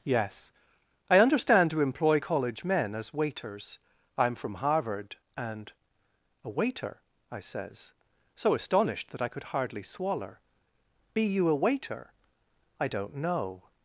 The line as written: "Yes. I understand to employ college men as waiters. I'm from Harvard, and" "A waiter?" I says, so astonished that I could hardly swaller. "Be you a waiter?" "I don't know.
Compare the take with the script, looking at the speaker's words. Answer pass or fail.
pass